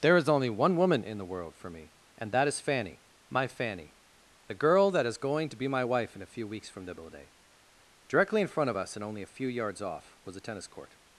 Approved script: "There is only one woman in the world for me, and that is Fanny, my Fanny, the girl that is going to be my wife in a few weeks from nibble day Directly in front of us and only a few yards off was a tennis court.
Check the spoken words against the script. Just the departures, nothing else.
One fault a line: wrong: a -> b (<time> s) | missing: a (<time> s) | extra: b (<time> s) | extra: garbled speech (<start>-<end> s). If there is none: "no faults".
no faults